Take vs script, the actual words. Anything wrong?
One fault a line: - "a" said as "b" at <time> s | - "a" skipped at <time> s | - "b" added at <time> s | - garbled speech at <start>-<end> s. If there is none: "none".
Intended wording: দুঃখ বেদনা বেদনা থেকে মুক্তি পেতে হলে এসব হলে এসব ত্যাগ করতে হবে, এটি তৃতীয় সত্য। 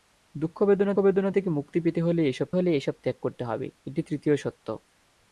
none